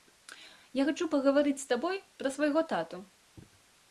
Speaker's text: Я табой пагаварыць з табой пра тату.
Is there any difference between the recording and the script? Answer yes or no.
yes